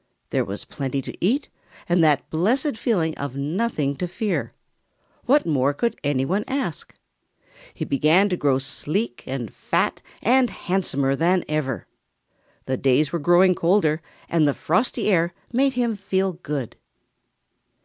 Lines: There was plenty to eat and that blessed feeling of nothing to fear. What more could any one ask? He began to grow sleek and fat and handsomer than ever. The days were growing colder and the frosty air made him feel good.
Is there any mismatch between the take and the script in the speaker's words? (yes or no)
no